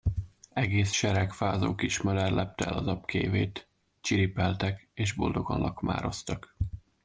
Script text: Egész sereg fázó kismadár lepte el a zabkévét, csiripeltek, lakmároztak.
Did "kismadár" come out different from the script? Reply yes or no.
no